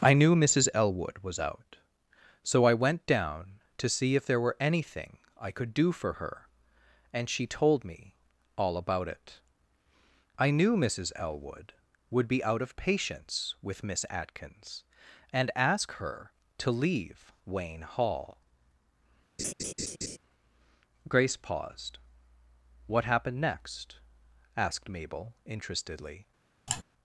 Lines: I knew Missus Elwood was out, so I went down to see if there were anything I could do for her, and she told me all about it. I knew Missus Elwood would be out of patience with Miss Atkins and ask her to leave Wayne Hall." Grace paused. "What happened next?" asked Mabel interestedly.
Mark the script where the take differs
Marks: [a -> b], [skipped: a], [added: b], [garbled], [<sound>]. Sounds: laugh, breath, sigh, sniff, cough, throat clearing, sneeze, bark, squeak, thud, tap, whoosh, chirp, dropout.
I knew Missus Elwood was out, so I went down to see if there were anything I could do for her, and she told me all about it. I knew Missus Elwood would be out of patience with Miss Atkins and ask her to leave Wayne Hall." [laugh] Grace paused. "What happened next?" asked Mabel interestedly. [sigh]